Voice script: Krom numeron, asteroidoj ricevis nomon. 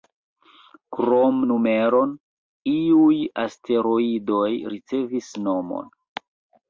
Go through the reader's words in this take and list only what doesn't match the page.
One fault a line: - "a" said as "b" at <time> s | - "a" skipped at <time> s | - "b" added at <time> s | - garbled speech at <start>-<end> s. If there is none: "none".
- "iuj" added at 2.7 s